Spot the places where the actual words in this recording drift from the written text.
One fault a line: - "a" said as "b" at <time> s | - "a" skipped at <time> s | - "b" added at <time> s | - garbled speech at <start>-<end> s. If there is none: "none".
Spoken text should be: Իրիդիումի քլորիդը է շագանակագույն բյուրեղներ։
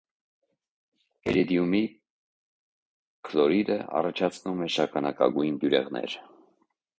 - "առաջացնում" added at 4.0 s